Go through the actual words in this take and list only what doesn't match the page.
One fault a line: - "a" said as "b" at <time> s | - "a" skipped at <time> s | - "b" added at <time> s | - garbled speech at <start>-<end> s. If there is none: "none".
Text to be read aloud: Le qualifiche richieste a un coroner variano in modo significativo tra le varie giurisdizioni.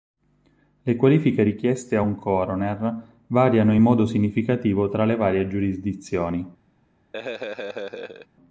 none